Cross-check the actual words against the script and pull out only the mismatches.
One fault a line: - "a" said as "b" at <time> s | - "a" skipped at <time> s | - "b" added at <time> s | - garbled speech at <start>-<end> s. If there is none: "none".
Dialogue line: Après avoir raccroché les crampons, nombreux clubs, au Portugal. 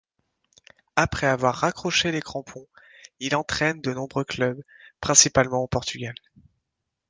- "il entraîne de" added at 3.2 s
- "principalement" added at 5.0 s